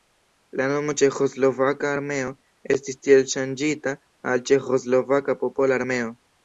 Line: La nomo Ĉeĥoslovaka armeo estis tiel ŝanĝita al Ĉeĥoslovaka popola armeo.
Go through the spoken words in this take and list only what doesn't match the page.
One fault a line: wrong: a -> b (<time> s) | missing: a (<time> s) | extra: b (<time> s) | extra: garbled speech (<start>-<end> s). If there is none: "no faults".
no faults